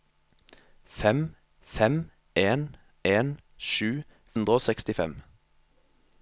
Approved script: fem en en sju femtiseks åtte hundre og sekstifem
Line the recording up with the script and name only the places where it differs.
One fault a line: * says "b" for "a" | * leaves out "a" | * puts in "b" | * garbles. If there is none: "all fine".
* puts in "fem"
* leaves out "femtiseks åtte"